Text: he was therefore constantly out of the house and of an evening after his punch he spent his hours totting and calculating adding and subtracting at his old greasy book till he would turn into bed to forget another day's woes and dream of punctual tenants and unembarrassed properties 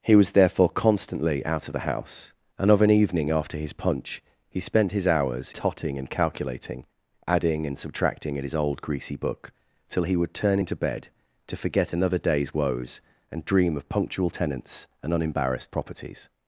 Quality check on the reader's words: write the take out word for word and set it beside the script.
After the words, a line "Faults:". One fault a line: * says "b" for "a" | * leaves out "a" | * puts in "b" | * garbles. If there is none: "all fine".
he was therefore constantly out of the house and of an evening after his punch he spent his hours totting and calculating adding and subtracting at his old greasy book till he would turn into bed to forget another day's woes and dream of punctual tenants and unembarrassed properties
Faults:
all fine